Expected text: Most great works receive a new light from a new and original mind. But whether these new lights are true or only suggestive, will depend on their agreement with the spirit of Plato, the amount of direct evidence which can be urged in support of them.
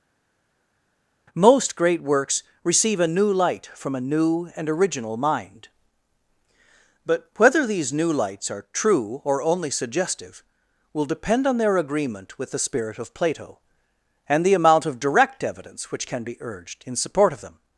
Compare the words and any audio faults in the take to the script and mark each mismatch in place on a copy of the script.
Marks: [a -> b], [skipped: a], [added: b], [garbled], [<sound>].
Most great works receive a new light from a new and original mind. But whether these new lights are true or only suggestive, will depend on their agreement with the spirit of Plato, [added: and] the amount of direct evidence which can be urged in support of them.